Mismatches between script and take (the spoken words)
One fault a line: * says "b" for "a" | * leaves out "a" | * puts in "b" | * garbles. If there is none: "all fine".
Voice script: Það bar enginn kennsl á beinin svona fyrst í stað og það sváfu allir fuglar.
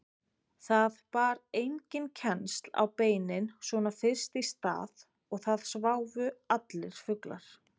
all fine